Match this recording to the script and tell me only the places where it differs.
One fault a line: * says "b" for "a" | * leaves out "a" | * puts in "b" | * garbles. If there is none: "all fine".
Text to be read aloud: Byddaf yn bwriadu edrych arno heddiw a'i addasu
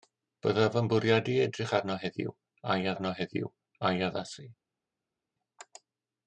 * puts in "arno heddiw a'i"